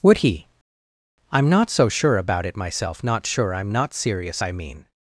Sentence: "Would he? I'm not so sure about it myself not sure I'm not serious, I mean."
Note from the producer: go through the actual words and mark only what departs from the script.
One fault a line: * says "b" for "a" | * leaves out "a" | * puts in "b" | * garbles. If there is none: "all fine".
all fine